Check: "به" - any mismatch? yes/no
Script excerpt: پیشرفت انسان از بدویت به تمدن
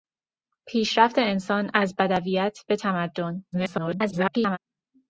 no